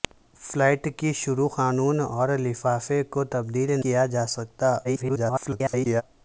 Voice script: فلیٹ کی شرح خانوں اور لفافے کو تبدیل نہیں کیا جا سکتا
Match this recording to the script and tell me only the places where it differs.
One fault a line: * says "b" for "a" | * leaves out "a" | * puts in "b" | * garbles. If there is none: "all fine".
* leaves out "نہیں"
* garbles